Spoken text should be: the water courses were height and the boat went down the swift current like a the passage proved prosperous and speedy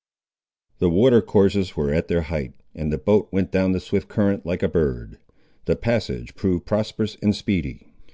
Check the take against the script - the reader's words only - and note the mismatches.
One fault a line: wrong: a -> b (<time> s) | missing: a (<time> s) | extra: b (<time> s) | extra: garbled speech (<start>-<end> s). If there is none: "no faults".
extra: at their (1.9 s)
extra: bird (4.7 s)